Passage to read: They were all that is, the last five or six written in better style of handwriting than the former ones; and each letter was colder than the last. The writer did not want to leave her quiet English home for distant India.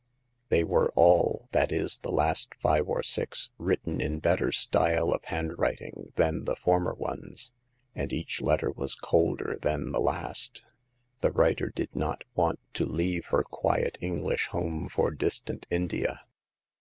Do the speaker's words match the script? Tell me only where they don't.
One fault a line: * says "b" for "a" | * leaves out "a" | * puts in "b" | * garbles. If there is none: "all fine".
all fine